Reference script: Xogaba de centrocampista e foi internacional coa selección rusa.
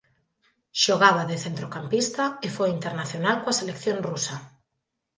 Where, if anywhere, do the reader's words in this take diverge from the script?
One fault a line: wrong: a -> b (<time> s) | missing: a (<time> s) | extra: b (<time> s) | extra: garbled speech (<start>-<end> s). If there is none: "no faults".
no faults